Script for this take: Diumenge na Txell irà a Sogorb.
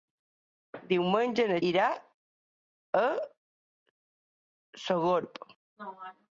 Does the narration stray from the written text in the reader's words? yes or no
yes